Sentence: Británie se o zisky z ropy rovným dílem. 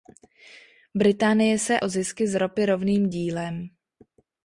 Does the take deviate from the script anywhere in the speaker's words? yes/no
no